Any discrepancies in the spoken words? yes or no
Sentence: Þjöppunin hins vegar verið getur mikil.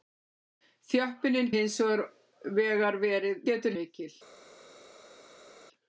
no